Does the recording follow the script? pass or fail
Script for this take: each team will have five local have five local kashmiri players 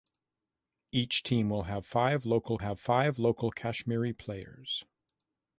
pass